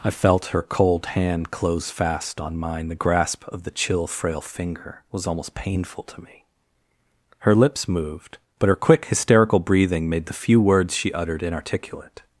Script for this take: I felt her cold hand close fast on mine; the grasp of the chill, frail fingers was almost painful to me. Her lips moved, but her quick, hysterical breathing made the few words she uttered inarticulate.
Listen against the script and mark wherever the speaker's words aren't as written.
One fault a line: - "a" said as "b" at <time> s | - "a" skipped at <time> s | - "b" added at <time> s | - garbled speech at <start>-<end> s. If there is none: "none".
- "fingers" said as "finger" at 4.4 s